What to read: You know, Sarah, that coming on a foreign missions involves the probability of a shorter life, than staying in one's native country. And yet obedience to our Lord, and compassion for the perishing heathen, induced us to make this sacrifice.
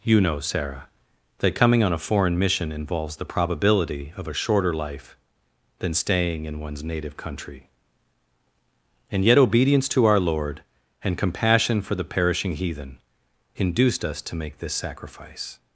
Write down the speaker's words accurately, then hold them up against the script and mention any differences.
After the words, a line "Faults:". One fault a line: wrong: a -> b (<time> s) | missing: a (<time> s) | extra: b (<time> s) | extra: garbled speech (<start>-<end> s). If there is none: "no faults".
You know, Sarah, that coming on a foreign mission involves the probability of a shorter life, than staying in one's native country. And yet obedience to our Lord, and compassion for the perishing heathen, induced us to make this sacrifice.
Faults:
wrong: missions -> mission (2.4 s)